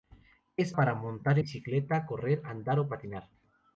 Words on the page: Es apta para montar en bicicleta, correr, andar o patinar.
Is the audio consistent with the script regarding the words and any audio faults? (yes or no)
no